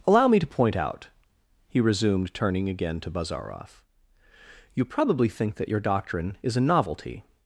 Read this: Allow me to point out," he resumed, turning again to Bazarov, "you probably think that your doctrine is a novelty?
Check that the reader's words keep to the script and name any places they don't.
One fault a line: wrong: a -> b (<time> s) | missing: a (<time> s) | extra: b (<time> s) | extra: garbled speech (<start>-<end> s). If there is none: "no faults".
no faults